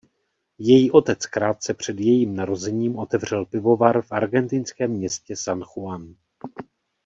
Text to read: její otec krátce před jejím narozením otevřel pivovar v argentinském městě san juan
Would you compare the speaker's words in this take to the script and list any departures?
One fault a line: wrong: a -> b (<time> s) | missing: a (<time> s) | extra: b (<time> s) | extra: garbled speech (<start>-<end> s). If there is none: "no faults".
no faults